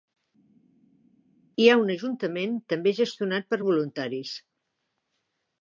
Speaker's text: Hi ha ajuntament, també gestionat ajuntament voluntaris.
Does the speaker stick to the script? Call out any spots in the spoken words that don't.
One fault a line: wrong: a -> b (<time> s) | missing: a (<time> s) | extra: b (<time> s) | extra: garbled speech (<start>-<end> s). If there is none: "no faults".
extra: un (1.8 s)
wrong: ajuntament -> per (3.5 s)